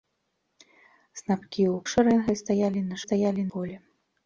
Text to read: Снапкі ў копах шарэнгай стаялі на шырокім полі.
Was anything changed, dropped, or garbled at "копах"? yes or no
yes